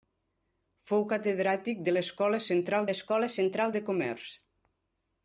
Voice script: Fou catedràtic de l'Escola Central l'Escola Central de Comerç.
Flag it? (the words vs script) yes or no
no